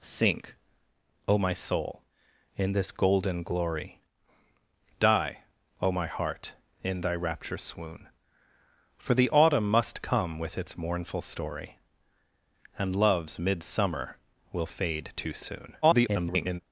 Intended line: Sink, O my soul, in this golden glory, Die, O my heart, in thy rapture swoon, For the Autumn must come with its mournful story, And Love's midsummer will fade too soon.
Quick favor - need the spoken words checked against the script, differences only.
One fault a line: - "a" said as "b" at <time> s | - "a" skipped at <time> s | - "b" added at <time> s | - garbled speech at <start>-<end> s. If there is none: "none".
- garbled speech at 15.8-16.6 s